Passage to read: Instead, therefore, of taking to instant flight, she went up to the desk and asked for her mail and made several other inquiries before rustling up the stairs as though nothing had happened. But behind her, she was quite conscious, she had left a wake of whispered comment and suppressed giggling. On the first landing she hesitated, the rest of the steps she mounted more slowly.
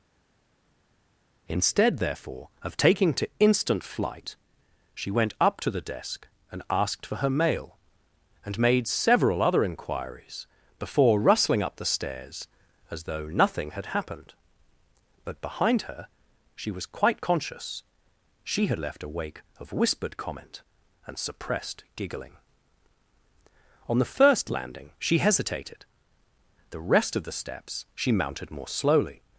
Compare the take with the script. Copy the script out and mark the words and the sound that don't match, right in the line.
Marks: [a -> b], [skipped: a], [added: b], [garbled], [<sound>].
Instead, therefore, of taking to instant flight, she went up to the desk and asked for her mail and made several other inquiries before rustling up the stairs as though nothing had happened. But behind her, she was quite conscious, she had left a wake of whispered comment and suppressed giggling. On the first landing she hesitated, the rest of the steps she mounted more slowly.